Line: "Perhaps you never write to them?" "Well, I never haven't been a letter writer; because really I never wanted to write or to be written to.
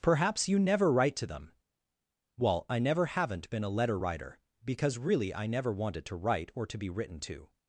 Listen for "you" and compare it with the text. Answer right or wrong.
right